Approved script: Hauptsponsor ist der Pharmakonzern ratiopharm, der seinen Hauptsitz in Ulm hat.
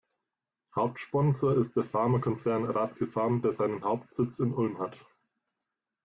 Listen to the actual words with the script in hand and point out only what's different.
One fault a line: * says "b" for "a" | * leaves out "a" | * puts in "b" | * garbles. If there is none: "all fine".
all fine